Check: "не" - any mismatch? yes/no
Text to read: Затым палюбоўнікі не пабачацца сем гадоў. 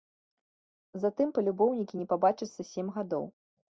no